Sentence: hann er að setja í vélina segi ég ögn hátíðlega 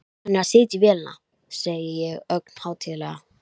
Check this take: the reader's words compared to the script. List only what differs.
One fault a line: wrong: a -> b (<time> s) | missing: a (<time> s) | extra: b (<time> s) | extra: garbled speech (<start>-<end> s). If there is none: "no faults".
no faults